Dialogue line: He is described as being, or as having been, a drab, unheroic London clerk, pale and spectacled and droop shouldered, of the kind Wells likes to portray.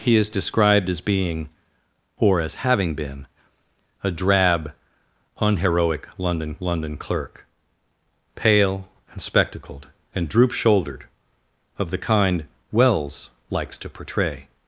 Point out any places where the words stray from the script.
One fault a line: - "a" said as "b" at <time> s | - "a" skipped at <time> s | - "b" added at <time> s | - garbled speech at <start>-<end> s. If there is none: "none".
- "London" added at 6.6 s